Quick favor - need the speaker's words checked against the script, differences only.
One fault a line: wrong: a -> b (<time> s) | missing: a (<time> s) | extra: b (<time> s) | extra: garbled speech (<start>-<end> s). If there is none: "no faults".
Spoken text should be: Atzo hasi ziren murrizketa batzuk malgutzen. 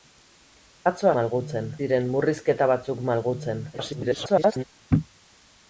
wrong: hasi -> malgutzen (1.2 s)
extra: garbled speech (3.7-4.6 s)